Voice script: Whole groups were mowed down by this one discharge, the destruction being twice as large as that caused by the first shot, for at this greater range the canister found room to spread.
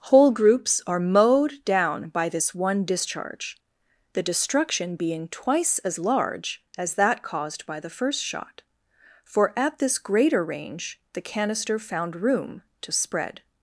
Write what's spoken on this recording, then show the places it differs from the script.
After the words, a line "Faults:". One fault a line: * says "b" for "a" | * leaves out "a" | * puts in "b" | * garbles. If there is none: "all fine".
Whole groups are mowed down by this one discharge, the destruction being twice as large as that caused by the first shot, for at this greater range the canister found room to spread.
Faults:
* says "are" for "were"